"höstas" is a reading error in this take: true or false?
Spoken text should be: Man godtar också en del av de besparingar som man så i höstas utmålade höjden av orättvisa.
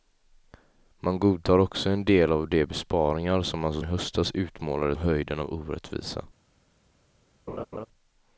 false